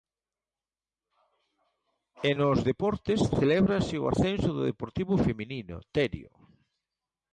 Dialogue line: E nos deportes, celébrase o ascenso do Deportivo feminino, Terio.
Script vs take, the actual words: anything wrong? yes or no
no